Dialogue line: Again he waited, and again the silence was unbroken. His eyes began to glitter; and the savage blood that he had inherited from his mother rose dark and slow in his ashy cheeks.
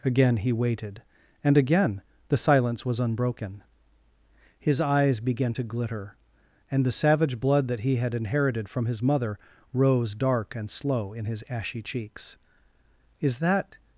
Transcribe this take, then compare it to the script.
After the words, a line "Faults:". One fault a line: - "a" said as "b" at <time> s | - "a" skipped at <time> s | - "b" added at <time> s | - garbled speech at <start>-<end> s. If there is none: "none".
Again he waited, and again the silence was unbroken. His eyes began to glitter; and the savage blood that he had inherited from his mother rose dark and slow in his ashy cheeks. "Is that
Faults:
- "Is that" added at 13.2 s